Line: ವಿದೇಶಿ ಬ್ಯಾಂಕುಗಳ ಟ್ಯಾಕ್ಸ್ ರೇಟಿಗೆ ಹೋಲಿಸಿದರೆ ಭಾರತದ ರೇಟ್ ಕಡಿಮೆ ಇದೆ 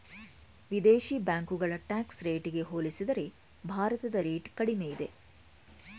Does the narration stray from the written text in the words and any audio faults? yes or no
no